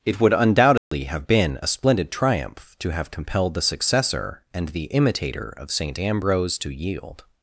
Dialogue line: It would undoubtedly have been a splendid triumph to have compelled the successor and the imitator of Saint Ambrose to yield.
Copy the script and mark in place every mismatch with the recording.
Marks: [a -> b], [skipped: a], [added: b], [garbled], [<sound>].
It would undoubtedly [dropout] have been a splendid triumph to have compelled the successor and the imitator of Saint Ambrose to yield.